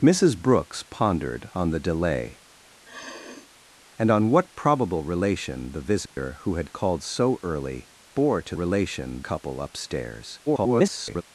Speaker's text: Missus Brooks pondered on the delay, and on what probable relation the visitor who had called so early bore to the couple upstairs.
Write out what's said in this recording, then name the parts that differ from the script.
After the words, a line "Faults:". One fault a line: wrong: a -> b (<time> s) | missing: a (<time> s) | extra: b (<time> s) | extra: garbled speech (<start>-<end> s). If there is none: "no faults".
Missus Brooks pondered on the delay, and on what probable relation the visitor who had called so early bore to relation couple upstairs. [garbled]
Faults:
wrong: the -> relation (8.5 s)
extra: garbled speech (10.5-11.2 s)